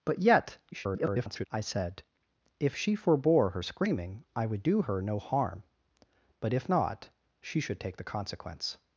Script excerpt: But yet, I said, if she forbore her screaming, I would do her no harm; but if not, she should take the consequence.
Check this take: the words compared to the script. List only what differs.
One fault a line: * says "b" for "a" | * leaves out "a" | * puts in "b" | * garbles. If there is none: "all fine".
* garbles